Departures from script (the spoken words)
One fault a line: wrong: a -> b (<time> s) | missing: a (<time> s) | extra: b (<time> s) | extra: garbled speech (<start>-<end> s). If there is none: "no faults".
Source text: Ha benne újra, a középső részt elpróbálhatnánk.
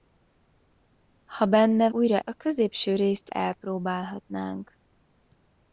no faults